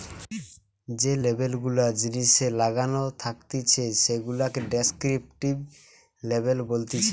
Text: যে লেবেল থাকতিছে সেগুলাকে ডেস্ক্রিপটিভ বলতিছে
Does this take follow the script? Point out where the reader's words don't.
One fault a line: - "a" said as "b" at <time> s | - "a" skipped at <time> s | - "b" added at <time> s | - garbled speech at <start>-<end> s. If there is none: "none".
- "গুলা জিনিসে লাগানো" added at 1.6 s
- "লেবেল" added at 6.2 s